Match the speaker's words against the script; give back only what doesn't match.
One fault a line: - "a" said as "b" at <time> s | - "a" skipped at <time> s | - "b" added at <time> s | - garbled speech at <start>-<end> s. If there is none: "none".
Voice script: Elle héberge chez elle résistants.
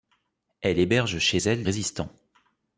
none